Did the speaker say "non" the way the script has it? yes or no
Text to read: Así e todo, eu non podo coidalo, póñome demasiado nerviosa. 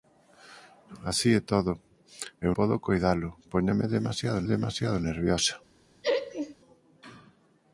no